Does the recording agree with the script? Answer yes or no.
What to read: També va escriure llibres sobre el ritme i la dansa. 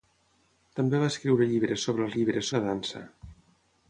no